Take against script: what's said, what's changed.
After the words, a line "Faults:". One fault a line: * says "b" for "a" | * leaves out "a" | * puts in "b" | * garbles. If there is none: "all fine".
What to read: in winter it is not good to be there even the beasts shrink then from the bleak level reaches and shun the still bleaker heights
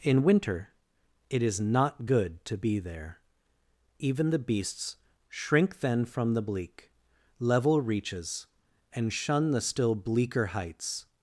in winter it is not good to be there even the beasts shrink then from the bleak level reaches and shun the still bleaker heights
Faults:
all fine